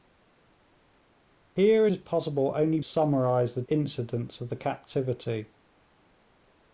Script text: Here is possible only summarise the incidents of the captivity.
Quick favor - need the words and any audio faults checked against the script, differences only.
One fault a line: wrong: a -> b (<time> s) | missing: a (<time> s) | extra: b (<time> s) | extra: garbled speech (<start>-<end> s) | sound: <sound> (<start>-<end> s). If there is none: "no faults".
no faults